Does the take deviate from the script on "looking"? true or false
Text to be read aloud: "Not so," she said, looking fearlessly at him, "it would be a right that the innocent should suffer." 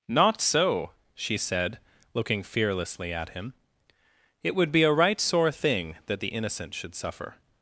false